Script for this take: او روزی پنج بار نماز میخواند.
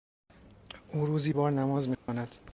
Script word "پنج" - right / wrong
wrong